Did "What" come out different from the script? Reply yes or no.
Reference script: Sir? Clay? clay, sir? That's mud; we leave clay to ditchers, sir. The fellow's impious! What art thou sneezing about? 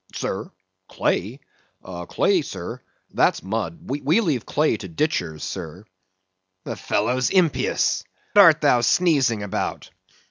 yes